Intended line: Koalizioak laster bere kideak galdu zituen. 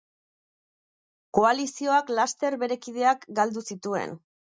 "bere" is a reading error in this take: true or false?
false